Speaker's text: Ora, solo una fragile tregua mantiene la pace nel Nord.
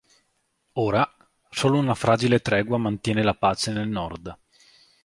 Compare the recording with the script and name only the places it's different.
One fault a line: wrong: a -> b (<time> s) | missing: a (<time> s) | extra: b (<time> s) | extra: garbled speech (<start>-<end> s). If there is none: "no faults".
no faults